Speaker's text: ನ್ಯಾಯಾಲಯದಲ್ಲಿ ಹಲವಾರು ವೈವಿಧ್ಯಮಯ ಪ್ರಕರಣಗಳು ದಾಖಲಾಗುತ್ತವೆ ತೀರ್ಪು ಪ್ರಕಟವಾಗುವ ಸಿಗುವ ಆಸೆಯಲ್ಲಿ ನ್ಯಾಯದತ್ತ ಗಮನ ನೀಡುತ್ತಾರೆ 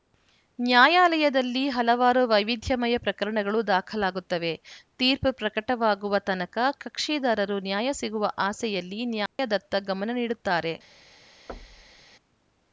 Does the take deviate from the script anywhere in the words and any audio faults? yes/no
yes